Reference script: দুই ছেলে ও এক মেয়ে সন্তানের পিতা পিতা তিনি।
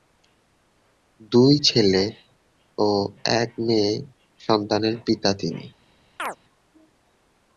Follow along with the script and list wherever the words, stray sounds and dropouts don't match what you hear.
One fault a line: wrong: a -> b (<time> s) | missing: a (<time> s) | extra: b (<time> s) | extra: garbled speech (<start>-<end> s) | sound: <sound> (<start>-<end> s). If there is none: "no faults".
missing: পিতা (5.3 s)
sound: chirp (6.2-6.4 s)